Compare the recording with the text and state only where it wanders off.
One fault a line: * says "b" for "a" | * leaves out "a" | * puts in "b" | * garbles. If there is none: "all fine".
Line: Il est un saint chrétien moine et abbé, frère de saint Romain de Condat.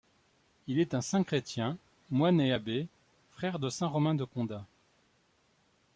all fine